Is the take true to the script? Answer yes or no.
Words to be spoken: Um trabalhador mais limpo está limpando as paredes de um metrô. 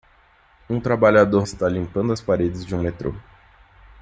no